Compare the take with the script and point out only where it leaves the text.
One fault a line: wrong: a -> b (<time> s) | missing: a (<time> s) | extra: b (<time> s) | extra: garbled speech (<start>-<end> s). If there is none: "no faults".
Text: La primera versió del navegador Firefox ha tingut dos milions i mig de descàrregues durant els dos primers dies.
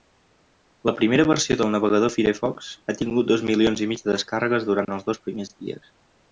no faults